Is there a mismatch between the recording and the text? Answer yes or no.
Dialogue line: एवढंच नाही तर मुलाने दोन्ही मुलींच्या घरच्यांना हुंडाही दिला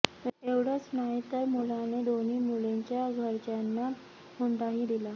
no